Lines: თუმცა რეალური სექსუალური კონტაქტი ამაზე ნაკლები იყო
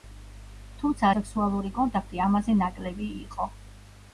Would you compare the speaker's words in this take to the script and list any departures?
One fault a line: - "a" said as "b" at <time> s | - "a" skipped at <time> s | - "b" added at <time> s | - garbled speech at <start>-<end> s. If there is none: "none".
- "რეალური" skipped at 1.1 s